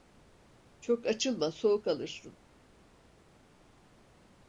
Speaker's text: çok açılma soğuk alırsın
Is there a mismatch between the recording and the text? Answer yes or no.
no